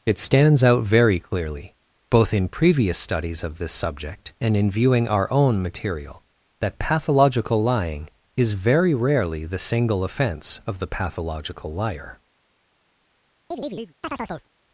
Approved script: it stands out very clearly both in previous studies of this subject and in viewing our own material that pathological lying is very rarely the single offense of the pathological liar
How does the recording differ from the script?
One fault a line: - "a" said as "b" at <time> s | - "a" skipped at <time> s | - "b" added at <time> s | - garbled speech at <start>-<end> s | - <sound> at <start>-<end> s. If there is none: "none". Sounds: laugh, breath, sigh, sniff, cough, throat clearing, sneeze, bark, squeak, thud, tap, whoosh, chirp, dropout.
- chirp at 13.5-14.5 s